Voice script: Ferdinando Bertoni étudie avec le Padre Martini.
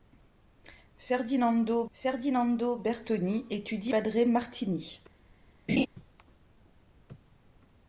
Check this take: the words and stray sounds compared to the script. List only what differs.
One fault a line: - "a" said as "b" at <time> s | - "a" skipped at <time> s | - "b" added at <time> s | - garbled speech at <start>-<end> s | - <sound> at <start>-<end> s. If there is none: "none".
- "ferdinando" added at 1.9 s
- "avec le" skipped at 3.9 s
- laugh at 5.7-5.9 s